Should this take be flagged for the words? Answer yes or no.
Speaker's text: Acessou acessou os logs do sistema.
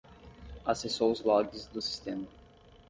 yes